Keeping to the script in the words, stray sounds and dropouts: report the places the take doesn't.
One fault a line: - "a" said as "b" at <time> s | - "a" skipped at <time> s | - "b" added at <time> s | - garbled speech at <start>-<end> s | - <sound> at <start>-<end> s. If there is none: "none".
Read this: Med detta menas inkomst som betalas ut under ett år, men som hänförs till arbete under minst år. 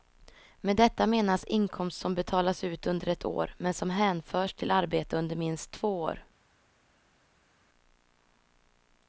- "två" added at 5.7 s